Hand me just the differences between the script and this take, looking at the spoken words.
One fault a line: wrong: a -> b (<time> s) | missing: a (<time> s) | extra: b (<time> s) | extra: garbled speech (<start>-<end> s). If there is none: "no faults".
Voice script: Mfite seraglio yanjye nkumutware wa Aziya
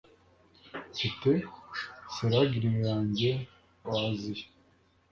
missing: nkumutware (3.3 s)